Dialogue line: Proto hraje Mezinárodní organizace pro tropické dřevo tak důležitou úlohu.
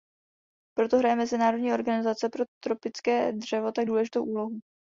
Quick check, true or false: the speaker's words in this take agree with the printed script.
true